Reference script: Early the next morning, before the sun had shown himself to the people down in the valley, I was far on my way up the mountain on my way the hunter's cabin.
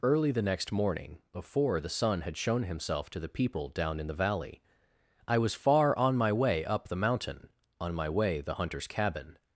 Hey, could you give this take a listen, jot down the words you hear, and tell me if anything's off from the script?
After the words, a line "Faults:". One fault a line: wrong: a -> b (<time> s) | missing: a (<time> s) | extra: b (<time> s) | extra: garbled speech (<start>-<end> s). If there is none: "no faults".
Early the next morning, before the sun had shown himself to the people down in the valley, I was far on my way up the mountain on my way the hunter's cabin.
Faults:
no faults